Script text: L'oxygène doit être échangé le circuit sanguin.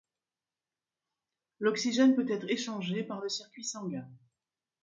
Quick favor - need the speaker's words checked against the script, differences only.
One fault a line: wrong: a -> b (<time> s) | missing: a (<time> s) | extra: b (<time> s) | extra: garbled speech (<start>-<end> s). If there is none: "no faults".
wrong: doit -> peut (2.1 s)
extra: par (3.0 s)